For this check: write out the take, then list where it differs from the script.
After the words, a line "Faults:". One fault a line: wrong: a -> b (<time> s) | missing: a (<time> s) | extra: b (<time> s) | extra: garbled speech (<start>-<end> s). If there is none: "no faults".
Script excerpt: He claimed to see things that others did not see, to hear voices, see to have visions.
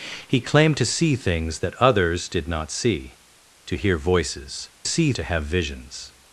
He claimed to see things that others did not see, to hear voices, see to have visions.
Faults:
no faults